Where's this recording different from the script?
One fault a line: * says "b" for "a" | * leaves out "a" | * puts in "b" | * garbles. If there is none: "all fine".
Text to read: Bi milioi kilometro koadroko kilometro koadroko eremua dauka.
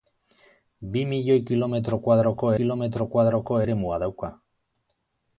all fine